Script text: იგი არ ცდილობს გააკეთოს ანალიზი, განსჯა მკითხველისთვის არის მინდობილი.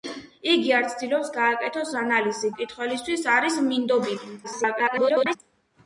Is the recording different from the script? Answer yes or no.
yes